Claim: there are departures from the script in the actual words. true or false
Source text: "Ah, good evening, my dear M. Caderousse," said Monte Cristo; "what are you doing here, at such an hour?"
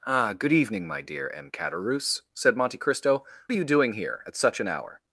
true